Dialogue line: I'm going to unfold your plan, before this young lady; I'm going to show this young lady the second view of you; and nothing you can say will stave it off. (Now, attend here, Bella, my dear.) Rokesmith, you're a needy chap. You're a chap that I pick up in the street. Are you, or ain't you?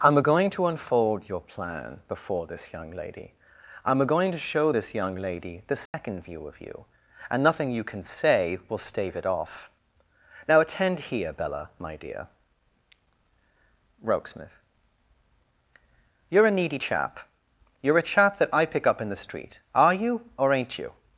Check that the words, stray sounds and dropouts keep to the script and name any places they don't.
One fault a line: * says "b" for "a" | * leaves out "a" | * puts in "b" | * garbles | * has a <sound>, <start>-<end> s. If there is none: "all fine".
* has a dropout, 5.9-5.9 s